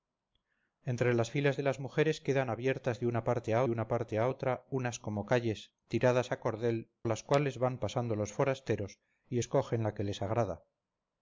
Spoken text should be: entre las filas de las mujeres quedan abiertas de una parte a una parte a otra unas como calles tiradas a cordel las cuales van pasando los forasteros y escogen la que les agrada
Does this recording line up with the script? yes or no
yes